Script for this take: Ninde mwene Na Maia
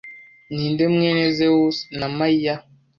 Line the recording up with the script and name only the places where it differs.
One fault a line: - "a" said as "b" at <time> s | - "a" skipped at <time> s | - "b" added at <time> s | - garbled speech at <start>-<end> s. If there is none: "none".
- "Zewusi" added at 1.4 s